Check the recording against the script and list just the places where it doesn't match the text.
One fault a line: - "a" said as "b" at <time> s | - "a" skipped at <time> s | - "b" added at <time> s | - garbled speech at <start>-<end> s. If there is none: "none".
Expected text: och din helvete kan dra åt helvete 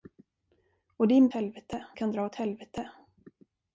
none